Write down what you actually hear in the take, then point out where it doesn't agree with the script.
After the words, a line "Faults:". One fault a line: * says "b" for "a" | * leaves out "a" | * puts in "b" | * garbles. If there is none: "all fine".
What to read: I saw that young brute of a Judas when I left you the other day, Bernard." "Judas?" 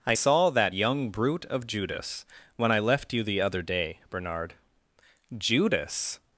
I saw that young brute of Judas when I left you the other day, Bernard." "Judas?"
Faults:
* leaves out "a"